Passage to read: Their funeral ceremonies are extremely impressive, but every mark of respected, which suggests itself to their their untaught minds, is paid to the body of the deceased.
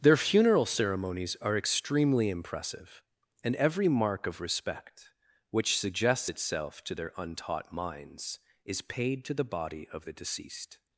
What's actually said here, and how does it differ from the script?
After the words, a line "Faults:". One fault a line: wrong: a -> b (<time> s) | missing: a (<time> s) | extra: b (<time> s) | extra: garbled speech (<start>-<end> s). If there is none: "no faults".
Their funeral ceremonies are extremely impressive, and every mark of respect, which suggests itself to their untaught minds, is paid to the body of the deceased.
Faults:
wrong: but -> and (3.4 s)
wrong: respected -> respect (4.4 s)
missing: their (7.1 s)